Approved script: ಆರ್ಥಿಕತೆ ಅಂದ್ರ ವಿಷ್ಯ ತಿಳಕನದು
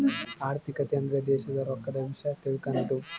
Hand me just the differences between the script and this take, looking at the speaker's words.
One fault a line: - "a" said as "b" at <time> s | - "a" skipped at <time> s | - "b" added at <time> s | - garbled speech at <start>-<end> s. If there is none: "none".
- "ದೇಶದ್ ರೊಕ್ಕದ" added at 1.3 s